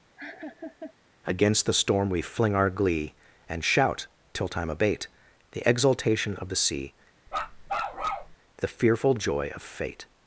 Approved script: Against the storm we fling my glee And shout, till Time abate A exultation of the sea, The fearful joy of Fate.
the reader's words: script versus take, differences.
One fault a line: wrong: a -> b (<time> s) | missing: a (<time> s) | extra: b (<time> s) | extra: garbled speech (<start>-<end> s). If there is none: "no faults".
wrong: my -> our (2.5 s)
wrong: A -> The (5.5 s)